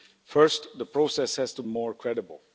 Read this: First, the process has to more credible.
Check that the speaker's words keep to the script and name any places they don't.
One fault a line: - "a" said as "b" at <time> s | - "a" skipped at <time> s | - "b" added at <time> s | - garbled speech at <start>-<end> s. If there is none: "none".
none